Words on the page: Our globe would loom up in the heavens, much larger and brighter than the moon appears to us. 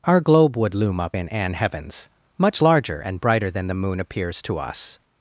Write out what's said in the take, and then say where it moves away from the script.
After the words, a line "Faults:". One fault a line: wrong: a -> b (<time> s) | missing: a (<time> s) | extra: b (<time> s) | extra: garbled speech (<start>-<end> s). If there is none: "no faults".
Our globe would loom up in an heavens, much larger and brighter than the moon appears to us.
Faults:
wrong: the -> an (1.3 s)